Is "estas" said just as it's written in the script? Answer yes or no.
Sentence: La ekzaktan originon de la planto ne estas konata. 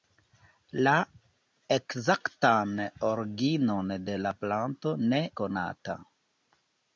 no